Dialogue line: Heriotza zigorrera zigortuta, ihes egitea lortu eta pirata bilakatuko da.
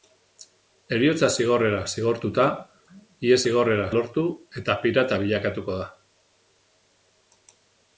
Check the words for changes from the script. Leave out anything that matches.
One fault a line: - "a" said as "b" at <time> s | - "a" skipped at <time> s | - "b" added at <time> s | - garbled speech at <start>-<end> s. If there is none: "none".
- "egitea" said as "zigorrera" at 3.5 s